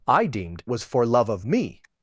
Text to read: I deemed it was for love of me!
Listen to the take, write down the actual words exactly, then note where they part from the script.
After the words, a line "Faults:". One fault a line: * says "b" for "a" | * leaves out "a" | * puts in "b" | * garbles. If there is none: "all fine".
I deemed was for love of me!
Faults:
* leaves out "it"